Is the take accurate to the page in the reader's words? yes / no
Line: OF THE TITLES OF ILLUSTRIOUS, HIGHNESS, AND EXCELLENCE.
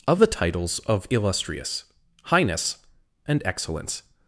yes